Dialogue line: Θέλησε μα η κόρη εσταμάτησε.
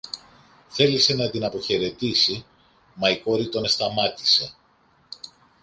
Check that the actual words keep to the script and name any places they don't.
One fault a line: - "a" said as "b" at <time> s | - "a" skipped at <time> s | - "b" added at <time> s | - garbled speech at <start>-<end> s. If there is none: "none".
- "να την αποχαιρετήσει" added at 1.1 s
- "τον" added at 3.5 s